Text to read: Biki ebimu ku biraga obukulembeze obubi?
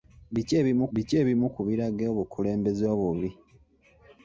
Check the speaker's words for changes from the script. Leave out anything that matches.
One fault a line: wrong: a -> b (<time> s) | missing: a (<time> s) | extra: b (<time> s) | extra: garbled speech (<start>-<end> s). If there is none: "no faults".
extra: biki ebimu (0.9 s)